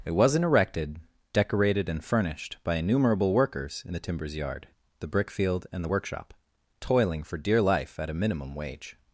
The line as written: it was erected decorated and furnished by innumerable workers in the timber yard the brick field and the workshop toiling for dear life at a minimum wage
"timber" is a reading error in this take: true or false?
true